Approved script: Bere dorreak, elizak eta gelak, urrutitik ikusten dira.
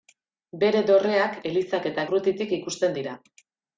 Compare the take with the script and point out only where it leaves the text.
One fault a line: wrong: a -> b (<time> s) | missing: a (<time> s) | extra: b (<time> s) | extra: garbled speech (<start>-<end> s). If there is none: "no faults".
missing: gelak (2.1 s)